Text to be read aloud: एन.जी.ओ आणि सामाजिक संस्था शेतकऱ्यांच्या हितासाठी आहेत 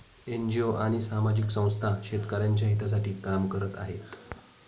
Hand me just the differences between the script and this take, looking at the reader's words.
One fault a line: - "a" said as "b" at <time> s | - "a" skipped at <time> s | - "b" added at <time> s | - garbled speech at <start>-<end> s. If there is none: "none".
- "काम करत" added at 3.2 s